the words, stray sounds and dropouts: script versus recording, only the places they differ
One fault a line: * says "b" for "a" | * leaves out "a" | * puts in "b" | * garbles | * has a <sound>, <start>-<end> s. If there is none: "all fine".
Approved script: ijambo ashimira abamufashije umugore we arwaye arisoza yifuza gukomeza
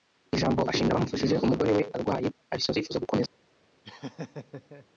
* has a laugh, 3.8-4.9 s